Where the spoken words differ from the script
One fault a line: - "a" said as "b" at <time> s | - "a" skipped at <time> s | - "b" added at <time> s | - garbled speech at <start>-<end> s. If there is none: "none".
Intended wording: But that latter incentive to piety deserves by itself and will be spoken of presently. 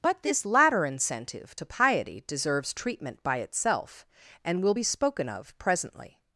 - "that" said as "this" at 0.2 s
- "treatment" added at 2.7 s